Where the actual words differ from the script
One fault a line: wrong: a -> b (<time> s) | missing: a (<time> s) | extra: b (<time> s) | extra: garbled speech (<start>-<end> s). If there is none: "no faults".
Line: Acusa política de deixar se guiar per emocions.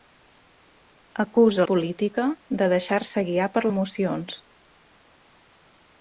no faults